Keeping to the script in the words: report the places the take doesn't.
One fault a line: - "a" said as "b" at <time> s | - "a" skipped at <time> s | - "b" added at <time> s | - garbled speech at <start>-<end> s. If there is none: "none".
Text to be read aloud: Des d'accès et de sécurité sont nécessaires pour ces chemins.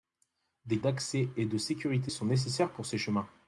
none